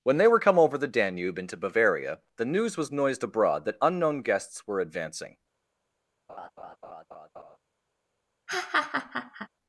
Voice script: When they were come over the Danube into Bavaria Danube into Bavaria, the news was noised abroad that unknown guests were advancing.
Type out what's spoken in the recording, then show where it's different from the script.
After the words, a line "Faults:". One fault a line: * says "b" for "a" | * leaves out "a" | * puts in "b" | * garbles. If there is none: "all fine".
When they were come over the Danube into Bavaria, the news was noised abroad that unknown guests were advancing.
Faults:
* leaves out "Danube into Bavaria"